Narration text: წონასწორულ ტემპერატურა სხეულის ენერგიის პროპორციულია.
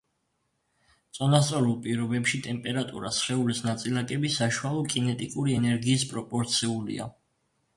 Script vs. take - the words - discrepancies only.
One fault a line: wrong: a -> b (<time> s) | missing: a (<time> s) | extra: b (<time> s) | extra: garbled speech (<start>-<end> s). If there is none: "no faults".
extra: პირობებში (1.8 s)
extra: ნაწილაკების საშუალო კინეტიკური (3.7 s)